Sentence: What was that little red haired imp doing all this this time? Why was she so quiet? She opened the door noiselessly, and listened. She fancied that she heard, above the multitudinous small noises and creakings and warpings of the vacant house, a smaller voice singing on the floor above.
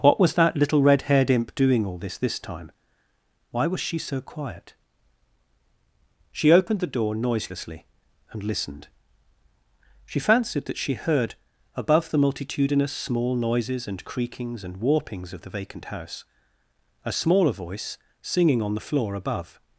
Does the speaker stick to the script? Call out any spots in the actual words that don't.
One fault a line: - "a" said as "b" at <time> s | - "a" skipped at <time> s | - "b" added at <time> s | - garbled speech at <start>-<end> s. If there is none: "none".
none